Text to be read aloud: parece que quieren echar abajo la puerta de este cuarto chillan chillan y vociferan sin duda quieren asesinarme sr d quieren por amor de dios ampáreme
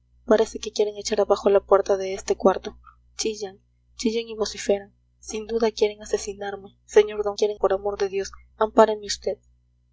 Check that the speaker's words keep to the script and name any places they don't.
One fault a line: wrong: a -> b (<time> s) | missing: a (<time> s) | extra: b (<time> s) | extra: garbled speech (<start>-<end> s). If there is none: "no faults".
no faults